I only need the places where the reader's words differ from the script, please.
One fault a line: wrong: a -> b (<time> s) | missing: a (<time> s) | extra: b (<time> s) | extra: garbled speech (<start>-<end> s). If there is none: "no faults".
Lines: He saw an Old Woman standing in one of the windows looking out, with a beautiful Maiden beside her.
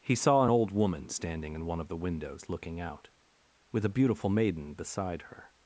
missing: an (0.5 s)